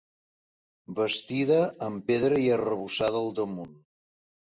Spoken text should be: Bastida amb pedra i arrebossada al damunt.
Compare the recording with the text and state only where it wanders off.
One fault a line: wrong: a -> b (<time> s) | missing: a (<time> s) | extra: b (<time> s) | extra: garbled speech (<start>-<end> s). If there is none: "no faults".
no faults